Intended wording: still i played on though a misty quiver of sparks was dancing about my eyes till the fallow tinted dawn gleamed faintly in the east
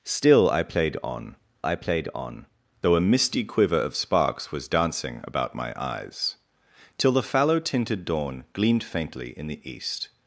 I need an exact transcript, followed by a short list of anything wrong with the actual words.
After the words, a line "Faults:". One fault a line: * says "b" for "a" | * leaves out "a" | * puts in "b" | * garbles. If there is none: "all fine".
still i played on i played on though a misty quiver of sparks was dancing about my eyes till the fallow tinted dawn gleamed faintly in the east
Faults:
* puts in "i played on"